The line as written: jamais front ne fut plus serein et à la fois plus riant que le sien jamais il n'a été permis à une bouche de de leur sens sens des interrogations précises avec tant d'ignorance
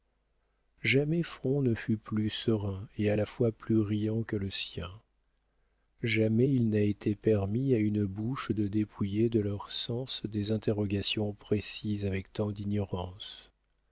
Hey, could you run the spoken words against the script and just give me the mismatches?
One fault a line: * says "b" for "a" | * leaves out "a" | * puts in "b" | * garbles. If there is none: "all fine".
* puts in "dépouiller"
* leaves out "sens"